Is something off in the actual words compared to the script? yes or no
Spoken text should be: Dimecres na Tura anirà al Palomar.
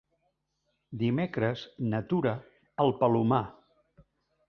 yes